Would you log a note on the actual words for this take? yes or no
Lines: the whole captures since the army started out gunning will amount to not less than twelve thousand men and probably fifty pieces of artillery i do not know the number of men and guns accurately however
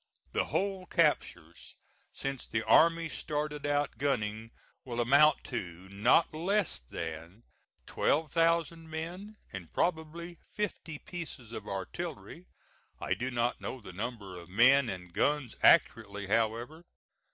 no